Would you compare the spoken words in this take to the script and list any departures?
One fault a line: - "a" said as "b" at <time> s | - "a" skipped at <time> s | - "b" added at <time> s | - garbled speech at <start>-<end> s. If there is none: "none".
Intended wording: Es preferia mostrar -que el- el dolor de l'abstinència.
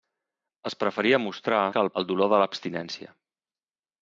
none